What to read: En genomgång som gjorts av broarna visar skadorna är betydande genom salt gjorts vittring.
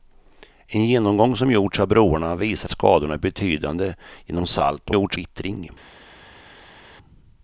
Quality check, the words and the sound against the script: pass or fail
pass